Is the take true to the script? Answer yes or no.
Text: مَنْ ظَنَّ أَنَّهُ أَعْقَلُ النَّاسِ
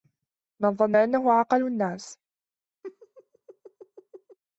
yes